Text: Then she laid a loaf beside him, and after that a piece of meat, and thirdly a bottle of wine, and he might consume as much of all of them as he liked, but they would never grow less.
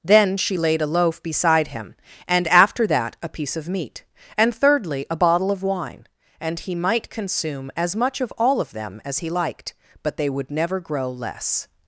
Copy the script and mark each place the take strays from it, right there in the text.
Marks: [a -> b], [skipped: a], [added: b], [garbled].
Then she laid a loaf beside him, and after that a piece of meat, and thirdly a bottle of wine, and he might consume as much of all of them as he liked, but they would never grow less.